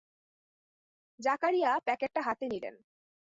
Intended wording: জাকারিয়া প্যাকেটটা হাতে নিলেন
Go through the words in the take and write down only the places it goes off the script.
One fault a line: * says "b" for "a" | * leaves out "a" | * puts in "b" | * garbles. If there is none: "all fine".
all fine